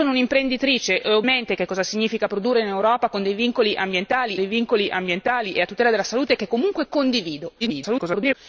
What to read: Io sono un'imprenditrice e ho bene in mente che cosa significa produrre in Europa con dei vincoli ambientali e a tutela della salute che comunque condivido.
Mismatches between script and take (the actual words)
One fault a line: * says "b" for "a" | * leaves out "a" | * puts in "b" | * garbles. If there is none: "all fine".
* leaves out "bene in"
* puts in "dei vincoli ambientali"
* garbles